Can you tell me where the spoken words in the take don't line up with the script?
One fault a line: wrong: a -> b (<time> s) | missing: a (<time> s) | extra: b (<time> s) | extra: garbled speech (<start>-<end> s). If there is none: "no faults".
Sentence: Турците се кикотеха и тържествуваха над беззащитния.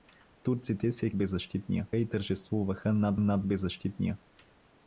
wrong: кикотеха -> беззащитния (1.2 s)
extra: над (3.2 s)